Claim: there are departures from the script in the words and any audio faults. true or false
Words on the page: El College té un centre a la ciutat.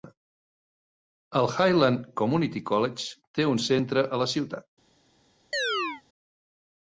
true